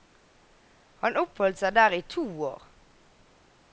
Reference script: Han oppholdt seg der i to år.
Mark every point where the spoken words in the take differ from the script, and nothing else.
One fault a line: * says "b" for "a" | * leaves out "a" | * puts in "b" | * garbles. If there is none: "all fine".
all fine